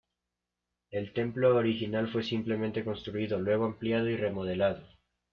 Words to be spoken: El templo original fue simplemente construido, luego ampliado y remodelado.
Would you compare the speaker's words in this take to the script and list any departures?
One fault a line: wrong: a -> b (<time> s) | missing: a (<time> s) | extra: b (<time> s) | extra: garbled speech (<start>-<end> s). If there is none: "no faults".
no faults